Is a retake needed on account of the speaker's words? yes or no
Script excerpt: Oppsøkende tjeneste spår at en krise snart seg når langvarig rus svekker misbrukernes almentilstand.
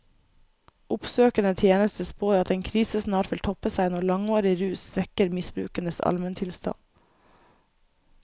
yes